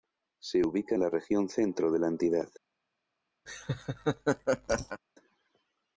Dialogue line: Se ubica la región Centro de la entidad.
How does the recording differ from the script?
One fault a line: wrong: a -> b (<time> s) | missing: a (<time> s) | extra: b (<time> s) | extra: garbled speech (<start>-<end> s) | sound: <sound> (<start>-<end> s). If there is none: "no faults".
sound: laugh (3.5-5.0 s)